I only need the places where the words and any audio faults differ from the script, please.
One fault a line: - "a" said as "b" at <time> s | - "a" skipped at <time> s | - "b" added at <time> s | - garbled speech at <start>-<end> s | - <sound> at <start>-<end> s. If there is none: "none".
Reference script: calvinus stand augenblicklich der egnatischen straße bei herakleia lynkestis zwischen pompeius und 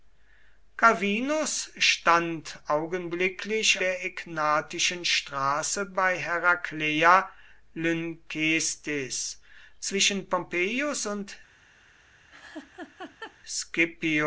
- laugh at 12.3-13.4 s